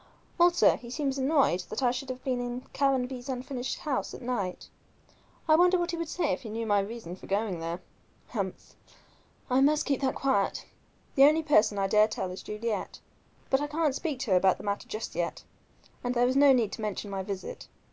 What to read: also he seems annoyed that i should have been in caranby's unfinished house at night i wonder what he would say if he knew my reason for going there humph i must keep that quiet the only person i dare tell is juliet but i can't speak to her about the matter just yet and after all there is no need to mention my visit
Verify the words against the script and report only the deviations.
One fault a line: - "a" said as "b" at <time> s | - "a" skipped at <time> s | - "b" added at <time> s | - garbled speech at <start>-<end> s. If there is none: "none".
- "after all" skipped at 16.2 s